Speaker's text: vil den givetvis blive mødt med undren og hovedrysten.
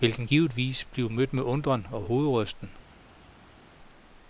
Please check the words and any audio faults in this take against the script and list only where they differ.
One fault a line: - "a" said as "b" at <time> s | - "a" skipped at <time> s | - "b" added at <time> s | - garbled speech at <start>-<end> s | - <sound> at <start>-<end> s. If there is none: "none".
none